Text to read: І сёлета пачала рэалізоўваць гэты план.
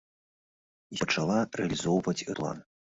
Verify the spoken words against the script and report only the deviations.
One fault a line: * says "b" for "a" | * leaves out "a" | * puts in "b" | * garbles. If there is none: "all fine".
* leaves out "сёлета"
* leaves out "гэты"